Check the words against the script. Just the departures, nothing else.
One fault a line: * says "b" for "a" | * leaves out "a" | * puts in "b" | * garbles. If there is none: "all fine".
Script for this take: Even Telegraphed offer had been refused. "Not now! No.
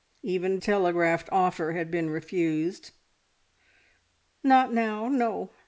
all fine